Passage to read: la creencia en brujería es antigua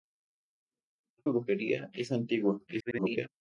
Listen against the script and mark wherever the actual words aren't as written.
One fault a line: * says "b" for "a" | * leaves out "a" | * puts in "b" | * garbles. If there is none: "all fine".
* leaves out "creencia"
* garbles